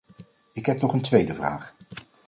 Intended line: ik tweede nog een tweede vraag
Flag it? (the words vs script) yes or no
yes